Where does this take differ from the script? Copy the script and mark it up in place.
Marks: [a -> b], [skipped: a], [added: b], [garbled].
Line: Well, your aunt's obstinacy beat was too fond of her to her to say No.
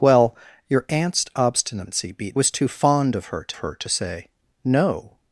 Well, your aunt's obstinacy beat was too fond of her to her to say No.